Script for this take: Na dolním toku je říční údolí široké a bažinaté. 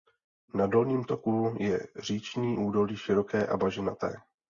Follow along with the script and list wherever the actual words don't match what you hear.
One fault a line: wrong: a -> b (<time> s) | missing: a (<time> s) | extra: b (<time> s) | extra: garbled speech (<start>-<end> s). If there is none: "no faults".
no faults